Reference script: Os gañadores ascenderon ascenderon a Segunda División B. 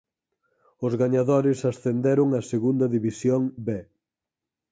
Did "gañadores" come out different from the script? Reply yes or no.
no